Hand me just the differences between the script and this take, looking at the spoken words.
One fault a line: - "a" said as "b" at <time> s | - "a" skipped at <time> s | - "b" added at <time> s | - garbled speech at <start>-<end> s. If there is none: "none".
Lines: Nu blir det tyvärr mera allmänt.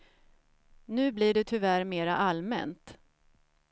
none